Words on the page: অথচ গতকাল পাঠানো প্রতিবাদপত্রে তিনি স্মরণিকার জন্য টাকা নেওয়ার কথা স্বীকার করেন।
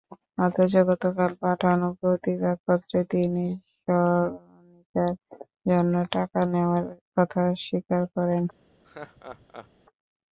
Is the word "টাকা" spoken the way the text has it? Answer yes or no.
yes